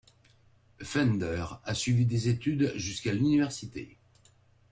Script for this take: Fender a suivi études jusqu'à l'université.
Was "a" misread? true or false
false